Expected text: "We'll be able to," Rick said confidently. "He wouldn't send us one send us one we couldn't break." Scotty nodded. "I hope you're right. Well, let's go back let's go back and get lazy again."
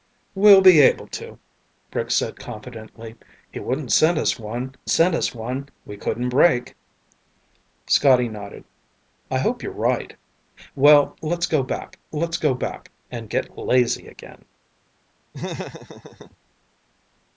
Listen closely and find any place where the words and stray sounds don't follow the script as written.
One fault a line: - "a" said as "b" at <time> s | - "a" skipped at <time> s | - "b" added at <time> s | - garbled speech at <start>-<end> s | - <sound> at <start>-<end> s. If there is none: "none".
- laugh at 15.3-16.4 s